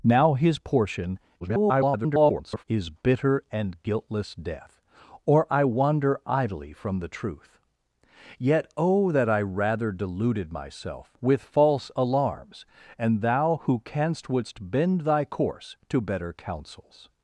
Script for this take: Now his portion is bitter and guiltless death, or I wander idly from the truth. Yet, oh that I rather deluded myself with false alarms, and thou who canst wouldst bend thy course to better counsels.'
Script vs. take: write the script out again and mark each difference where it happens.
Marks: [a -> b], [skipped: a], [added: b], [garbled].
Now his portion [garbled] is bitter and guiltless death, or I wander idly from the truth. Yet, oh that I rather deluded myself with false alarms, and thou who canst wouldst bend thy course to better counsels.'